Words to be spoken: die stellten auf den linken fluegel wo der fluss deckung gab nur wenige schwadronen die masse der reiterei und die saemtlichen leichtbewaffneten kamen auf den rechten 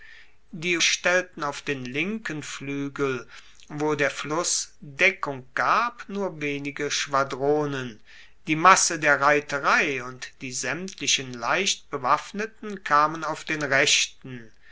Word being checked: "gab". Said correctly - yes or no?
yes